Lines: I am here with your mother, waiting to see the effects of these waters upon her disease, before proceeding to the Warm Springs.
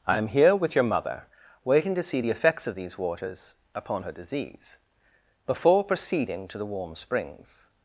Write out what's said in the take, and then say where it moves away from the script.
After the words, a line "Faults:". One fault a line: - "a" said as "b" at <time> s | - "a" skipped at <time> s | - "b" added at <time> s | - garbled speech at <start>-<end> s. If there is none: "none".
I am here with your mother, waiting to see the effects of these waters upon her disease, before proceeding to the Warm Springs.
Faults:
none